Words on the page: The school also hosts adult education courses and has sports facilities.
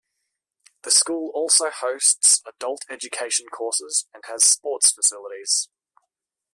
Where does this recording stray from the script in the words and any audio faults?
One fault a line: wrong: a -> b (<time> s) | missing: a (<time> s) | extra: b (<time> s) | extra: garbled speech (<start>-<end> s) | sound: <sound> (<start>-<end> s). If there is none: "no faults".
no faults